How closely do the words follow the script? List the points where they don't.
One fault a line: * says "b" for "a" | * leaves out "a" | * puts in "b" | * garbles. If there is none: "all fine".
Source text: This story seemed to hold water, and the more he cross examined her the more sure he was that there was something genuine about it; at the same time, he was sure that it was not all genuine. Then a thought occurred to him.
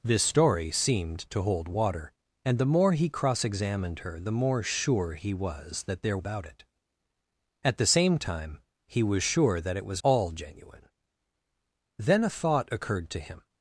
* leaves out "was something genuine"
* leaves out "not"